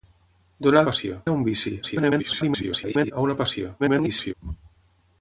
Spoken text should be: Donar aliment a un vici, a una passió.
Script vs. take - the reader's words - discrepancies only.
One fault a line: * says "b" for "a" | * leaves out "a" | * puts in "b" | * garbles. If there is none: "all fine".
* says "passió" for "aliment"
* garbles
* garbles